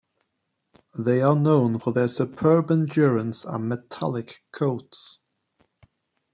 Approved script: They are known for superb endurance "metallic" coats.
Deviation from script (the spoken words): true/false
true